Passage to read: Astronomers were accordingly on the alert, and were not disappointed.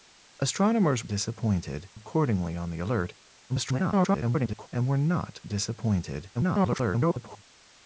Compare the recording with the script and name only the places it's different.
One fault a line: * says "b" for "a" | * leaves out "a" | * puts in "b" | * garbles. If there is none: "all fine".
* says "disappointed" for "were"
* garbles
* garbles